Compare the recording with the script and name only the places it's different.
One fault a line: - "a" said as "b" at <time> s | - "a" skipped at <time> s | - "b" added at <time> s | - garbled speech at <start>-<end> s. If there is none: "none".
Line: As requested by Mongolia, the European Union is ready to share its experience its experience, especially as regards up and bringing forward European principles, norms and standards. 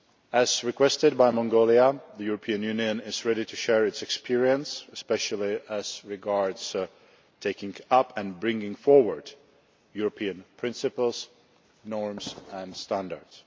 - "its experience" skipped at 4.8 s
- "taking" added at 7.4 s